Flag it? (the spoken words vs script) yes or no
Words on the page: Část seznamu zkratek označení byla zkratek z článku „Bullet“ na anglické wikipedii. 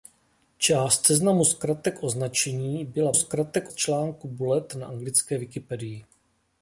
no